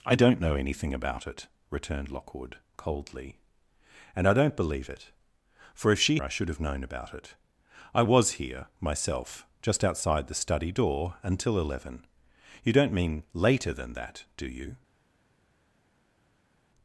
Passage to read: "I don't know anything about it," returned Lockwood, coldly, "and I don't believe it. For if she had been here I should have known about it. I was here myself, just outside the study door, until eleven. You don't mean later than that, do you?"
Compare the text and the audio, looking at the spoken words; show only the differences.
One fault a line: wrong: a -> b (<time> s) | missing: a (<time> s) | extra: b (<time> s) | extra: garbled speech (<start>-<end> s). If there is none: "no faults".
missing: had been here (6.2 s)